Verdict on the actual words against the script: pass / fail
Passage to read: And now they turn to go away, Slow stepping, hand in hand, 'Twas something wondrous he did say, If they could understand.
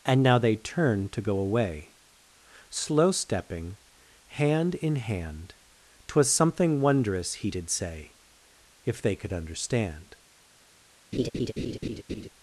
pass